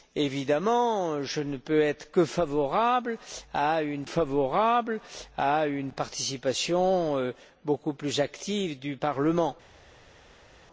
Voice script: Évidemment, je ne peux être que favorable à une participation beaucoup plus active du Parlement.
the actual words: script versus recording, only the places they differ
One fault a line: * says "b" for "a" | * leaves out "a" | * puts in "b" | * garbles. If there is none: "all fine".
* puts in "favorable à une"